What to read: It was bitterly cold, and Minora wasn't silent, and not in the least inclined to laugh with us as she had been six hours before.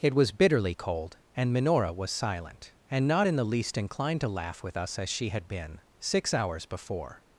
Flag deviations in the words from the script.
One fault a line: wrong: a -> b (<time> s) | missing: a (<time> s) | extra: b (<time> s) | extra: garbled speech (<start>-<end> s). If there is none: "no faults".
wrong: wasn't -> was (1.9 s)